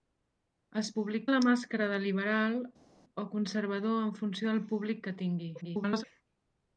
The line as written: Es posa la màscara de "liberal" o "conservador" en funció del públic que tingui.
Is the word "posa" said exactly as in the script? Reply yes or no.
no